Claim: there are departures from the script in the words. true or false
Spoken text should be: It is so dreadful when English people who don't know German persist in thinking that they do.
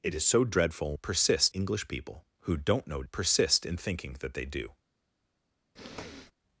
true